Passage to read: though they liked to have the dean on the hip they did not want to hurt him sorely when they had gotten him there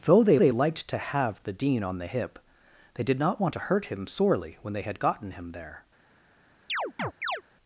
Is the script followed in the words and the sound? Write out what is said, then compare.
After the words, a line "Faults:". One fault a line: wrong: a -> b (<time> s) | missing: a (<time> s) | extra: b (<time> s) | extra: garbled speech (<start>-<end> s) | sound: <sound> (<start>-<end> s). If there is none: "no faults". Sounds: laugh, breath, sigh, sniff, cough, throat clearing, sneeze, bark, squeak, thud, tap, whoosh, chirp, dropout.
though they they liked to have the dean on the hip they did not want to hurt him sorely when they had gotten him there
Faults:
extra: they (0.4 s)
sound: chirp (6.7-7.4 s)